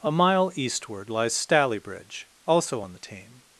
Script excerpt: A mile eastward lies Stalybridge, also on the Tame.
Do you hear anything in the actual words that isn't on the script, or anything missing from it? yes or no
no